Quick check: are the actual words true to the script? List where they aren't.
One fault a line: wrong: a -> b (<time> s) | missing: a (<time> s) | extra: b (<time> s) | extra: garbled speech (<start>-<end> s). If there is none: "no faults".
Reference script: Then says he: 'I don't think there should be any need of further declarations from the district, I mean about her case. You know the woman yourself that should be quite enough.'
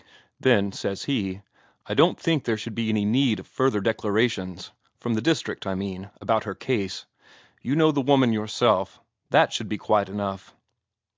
no faults